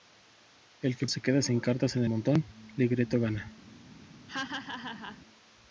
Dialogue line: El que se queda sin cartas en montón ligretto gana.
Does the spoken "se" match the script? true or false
true